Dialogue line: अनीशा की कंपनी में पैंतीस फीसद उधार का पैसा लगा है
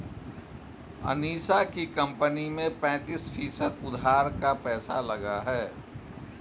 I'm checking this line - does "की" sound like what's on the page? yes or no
yes